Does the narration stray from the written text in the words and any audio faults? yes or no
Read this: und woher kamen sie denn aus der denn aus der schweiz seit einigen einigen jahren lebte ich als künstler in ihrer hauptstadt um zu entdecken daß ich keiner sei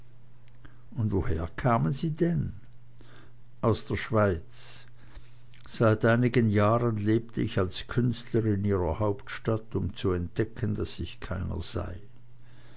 yes